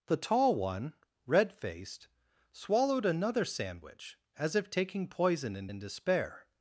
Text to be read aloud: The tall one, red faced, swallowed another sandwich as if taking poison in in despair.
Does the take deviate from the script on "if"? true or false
false